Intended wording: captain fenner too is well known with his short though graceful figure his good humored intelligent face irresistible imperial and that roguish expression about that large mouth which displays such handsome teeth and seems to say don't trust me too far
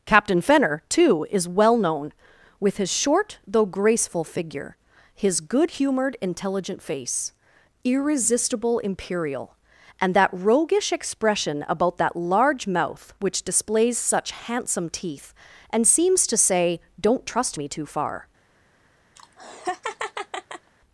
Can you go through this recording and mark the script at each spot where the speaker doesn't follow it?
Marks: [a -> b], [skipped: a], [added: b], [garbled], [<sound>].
captain fenner too is well known with his short though graceful figure his good humored intelligent face irresistible imperial and that roguish expression about that large mouth which displays such handsome teeth and seems to say don't trust me too far [laugh]